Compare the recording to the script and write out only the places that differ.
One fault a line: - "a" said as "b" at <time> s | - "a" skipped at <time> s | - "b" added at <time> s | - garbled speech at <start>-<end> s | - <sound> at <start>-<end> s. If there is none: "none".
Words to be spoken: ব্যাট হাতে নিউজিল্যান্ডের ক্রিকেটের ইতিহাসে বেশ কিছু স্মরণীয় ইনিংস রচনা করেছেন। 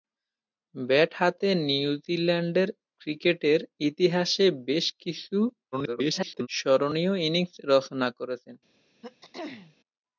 - garbled speech at 5.7-6.5 s
- throat clearing at 9.0-9.7 s